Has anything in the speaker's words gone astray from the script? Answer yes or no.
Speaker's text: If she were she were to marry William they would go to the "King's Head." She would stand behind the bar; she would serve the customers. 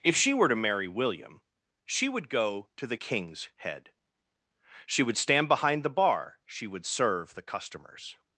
yes